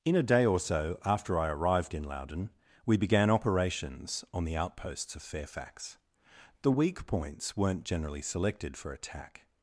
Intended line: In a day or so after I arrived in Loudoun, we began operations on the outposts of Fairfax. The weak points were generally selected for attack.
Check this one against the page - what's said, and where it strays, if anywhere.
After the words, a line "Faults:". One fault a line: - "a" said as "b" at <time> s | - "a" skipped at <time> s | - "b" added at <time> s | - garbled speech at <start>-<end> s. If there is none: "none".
In a day or so after I arrived in Loudoun, we began operations on the outposts of Fairfax. The weak points weren't generally selected for attack.
Faults:
- "were" said as "weren't" at 7.6 s